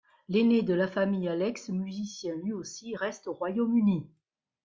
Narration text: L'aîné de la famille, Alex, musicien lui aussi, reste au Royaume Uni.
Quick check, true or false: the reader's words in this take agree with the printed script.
true